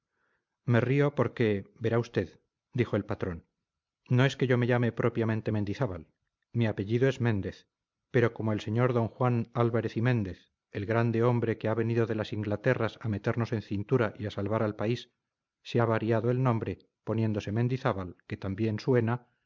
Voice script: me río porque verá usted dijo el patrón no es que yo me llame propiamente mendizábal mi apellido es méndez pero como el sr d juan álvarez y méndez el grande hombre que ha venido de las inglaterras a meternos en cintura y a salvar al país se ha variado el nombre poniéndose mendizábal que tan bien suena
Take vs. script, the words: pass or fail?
pass